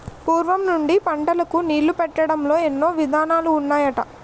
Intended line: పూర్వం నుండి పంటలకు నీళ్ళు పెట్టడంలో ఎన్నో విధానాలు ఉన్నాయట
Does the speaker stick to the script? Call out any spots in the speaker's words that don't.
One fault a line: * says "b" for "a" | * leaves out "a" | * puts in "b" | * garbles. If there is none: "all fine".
all fine